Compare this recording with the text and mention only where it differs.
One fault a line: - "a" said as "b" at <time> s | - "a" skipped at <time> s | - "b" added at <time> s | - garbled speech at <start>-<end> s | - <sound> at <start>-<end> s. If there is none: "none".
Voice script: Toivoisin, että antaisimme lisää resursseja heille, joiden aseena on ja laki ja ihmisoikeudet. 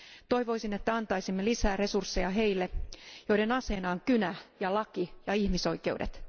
- "kynä" added at 4.0 s